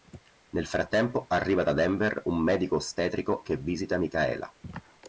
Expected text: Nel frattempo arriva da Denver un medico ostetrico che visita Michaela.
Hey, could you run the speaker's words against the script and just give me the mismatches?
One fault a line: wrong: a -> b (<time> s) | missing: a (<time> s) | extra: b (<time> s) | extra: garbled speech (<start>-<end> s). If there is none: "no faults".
no faults